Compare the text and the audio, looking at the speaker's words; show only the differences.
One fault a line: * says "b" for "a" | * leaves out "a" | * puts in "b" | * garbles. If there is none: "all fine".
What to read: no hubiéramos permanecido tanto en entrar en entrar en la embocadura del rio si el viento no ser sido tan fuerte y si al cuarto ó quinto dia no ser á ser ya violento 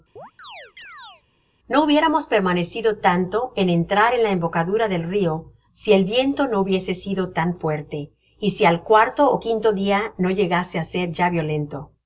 * leaves out "entrar en"
* says "hubiese" for "ser"
* says "llegase" for "ser"